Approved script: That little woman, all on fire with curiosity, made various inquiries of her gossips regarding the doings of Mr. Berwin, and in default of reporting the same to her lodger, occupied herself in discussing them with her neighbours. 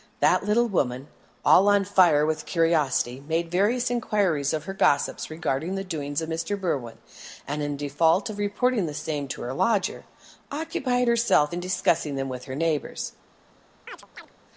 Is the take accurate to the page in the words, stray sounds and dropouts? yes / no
no